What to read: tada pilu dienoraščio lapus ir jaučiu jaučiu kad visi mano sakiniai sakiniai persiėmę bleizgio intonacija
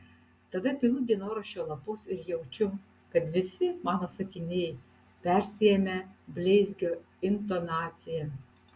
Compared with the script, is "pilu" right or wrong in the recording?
right